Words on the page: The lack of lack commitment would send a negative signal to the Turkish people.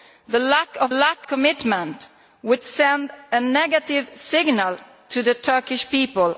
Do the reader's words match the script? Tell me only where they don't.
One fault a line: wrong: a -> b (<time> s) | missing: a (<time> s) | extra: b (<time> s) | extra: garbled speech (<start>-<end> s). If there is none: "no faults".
no faults